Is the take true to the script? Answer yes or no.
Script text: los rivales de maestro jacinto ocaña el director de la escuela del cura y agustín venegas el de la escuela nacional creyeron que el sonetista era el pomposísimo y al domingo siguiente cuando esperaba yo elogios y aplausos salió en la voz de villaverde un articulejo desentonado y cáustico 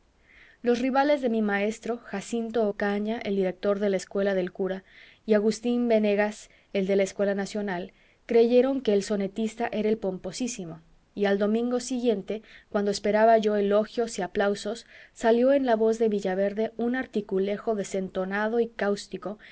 no